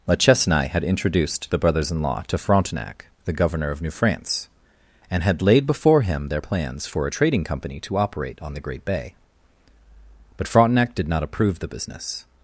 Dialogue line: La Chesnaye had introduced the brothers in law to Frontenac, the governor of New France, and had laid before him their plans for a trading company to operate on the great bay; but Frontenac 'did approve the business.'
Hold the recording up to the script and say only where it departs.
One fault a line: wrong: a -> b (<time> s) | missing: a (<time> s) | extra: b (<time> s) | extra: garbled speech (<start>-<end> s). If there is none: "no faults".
extra: not (11.1 s)